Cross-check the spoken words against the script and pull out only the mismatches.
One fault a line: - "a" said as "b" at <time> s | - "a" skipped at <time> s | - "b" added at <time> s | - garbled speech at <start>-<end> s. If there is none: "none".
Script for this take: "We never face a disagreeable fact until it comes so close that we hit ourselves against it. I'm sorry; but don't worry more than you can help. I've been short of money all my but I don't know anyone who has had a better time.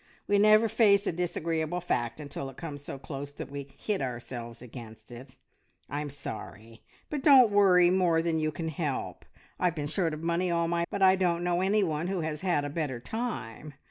none